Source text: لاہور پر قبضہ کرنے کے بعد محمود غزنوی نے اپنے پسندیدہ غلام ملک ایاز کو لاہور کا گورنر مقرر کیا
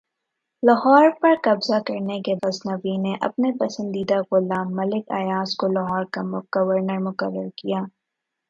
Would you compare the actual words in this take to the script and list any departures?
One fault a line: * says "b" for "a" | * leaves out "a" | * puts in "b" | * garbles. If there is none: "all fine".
* leaves out "بعد محمود"